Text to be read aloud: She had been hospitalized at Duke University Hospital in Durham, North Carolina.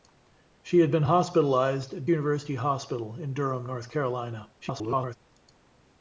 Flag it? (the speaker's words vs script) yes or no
yes